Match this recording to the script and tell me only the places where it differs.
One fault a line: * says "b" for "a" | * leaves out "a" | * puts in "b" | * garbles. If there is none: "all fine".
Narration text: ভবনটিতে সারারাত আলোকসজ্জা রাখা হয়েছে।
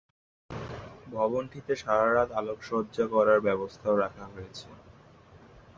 * puts in "করার ব্যবস্থাও"